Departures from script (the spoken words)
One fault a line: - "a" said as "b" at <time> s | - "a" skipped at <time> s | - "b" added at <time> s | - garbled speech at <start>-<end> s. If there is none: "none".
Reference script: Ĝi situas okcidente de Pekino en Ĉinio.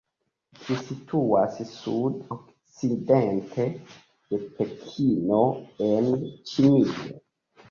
- "sud" added at 1.7 s